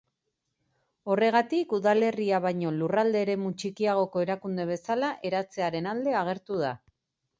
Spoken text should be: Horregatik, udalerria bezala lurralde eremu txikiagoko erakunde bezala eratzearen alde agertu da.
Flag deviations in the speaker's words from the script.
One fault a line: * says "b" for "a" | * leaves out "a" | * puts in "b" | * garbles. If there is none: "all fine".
* says "baino" for "bezala"